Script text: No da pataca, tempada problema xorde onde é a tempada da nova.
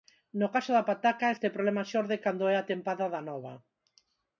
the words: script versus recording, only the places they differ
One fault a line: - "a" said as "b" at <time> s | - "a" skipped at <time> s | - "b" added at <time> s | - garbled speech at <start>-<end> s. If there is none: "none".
- "caso" added at 0.6 s
- "tempada" said as "este" at 1.3 s
- "onde" said as "cando" at 2.2 s